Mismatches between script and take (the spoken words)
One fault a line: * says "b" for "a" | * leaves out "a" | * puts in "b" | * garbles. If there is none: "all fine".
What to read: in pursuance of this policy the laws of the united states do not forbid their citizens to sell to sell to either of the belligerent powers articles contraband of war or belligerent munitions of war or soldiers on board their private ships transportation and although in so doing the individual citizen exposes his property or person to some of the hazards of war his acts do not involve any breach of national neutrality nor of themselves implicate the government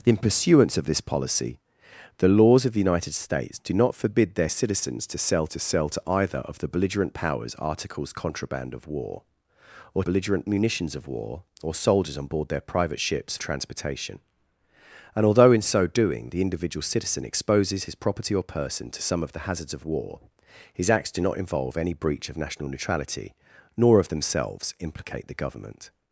all fine